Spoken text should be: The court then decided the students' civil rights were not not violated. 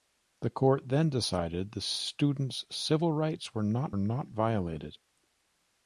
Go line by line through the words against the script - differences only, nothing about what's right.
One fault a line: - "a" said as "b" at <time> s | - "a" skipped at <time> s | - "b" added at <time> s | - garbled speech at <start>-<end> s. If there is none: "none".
none